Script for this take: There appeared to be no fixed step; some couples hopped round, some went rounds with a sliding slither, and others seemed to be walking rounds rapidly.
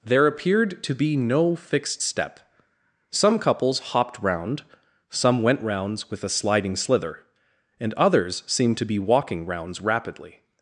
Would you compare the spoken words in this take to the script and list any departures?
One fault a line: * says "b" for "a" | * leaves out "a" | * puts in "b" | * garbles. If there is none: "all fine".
all fine